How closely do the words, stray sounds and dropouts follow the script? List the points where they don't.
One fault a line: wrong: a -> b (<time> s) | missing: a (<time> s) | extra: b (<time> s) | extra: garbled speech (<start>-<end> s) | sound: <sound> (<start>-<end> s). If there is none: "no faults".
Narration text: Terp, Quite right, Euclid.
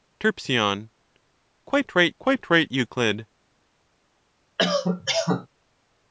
extra: Quite right (2.2 s)
sound: cough (4.6-5.5 s)